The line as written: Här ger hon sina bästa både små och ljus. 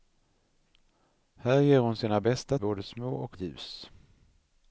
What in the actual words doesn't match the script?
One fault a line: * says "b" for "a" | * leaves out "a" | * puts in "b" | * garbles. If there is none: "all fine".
all fine